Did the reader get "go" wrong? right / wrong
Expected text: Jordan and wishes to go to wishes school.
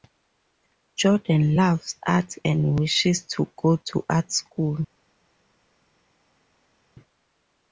right